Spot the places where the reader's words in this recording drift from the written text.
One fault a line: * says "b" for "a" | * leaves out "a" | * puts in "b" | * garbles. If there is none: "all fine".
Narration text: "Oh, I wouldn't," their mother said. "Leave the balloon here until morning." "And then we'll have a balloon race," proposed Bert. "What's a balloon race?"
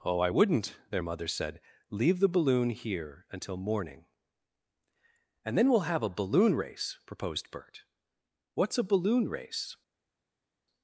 all fine